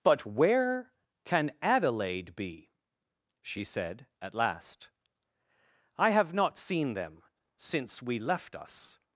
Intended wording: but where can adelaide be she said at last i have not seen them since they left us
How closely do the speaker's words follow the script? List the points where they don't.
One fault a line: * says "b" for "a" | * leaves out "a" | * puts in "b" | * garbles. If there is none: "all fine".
* says "we" for "they"